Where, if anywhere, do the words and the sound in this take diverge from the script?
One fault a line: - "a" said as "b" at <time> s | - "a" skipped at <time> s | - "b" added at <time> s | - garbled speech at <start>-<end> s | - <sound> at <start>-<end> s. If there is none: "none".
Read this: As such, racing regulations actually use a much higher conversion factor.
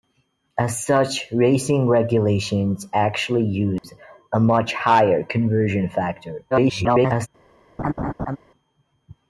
- dropout at 3.8-3.8 s
- garbled speech at 6.5-7.3 s
- laugh at 7.8-8.4 s